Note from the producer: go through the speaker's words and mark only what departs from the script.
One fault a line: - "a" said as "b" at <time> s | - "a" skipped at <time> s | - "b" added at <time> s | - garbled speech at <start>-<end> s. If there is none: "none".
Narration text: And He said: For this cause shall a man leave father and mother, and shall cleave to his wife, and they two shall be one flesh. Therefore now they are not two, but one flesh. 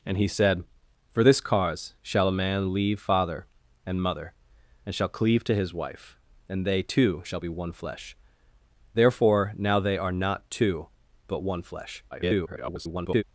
- garbled speech at 12.1-13.2 s